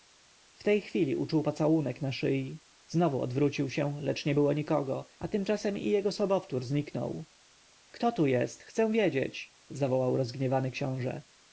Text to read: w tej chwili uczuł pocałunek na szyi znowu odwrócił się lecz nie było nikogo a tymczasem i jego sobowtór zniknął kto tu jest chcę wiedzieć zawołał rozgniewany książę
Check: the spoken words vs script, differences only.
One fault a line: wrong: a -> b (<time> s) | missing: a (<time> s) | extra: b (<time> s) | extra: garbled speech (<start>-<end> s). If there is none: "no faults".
no faults